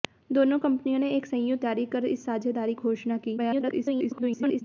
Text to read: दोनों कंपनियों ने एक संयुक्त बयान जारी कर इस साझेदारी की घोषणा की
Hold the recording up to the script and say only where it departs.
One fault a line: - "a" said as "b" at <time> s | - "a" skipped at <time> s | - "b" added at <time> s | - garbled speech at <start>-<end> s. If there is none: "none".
- "बयान" skipped at 1.6 s
- "की" skipped at 2.7 s
- garbled speech at 3.4-4.6 s